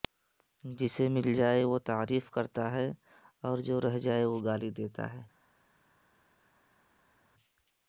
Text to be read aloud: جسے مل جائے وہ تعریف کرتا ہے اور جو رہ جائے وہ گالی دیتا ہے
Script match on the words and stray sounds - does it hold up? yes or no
yes